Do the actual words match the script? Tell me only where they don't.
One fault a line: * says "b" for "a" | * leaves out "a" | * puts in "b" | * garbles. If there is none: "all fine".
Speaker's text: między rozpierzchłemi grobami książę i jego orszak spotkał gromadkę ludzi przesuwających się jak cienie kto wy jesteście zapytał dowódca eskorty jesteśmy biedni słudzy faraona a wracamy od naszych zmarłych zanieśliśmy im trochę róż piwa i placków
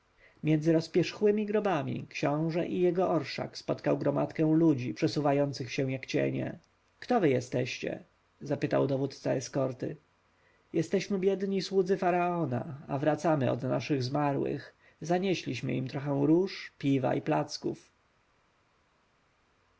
all fine